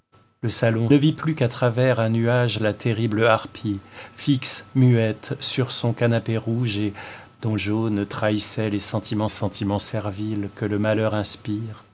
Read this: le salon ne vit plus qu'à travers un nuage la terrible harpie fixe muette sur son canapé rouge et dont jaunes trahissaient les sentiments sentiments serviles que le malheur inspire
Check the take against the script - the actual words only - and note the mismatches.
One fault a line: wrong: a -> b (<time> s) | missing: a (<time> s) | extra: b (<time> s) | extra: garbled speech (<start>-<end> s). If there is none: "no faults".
no faults